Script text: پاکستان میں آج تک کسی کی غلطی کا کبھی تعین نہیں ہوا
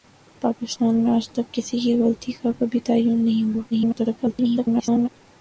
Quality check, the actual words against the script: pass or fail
fail